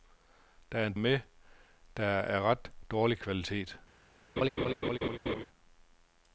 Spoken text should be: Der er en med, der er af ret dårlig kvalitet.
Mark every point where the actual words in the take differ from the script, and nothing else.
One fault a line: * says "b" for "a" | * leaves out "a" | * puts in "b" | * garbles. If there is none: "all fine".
all fine